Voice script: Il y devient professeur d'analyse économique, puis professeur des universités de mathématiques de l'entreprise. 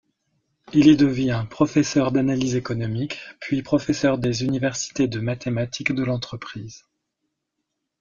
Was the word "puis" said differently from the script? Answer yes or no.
no